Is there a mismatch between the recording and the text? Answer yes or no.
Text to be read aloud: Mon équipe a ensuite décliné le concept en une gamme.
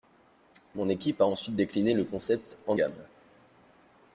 yes